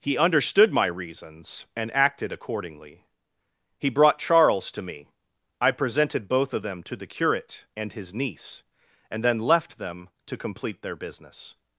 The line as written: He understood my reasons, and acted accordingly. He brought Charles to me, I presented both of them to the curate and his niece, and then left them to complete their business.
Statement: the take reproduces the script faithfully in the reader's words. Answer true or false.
true